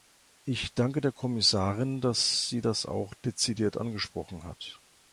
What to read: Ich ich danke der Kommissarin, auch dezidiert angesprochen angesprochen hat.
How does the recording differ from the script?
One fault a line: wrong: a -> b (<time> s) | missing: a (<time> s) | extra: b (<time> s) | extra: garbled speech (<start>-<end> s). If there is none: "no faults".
missing: ich (0.7 s)
extra: dass sie das (2.0 s)
missing: angesprochen (4.4 s)